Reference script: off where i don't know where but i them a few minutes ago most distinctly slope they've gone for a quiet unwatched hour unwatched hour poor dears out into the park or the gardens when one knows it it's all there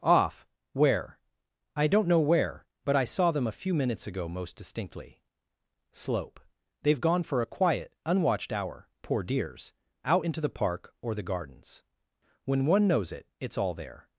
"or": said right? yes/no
yes